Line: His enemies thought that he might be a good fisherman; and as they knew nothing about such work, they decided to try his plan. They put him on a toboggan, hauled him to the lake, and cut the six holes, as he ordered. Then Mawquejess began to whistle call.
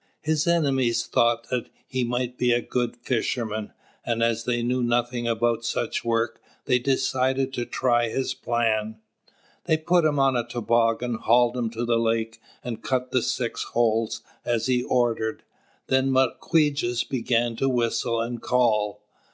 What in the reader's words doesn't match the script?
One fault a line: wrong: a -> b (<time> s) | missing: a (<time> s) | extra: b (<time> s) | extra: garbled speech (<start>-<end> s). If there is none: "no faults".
extra: and (18.2 s)